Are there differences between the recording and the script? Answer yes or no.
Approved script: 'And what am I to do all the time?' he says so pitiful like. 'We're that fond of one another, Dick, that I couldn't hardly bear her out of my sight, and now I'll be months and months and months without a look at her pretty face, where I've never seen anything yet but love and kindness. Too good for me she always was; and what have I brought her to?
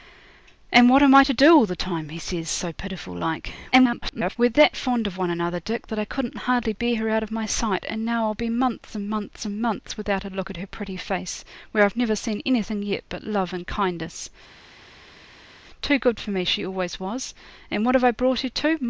yes